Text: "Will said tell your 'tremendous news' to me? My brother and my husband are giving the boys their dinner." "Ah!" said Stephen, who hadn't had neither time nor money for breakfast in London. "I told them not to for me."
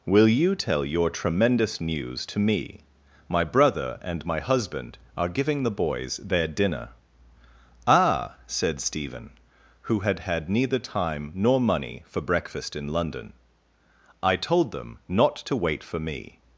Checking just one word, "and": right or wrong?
right